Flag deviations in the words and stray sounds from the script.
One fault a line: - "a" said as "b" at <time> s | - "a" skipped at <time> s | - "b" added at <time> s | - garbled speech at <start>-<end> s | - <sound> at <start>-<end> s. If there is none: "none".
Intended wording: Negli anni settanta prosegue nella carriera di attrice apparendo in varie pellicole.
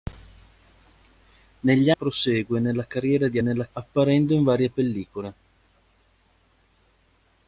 - "anni settanta" skipped at 1.9 s
- "attrice" said as "nella" at 3.4 s